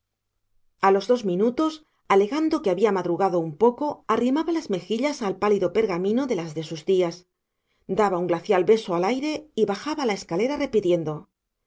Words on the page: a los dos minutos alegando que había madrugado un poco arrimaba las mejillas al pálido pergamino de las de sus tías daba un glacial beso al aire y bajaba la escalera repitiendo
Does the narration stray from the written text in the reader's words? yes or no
no